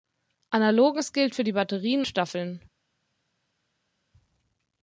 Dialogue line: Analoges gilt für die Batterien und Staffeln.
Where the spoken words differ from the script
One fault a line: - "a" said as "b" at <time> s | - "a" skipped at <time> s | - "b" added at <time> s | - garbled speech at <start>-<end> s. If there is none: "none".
- "und" skipped at 2.0 s